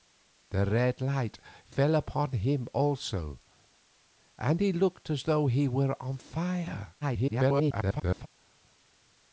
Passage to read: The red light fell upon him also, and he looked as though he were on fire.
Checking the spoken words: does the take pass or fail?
fail